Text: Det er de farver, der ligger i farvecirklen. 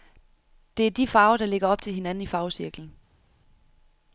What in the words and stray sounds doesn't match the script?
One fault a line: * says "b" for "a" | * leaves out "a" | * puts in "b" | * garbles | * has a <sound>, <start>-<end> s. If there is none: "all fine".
* puts in "op til hinanden"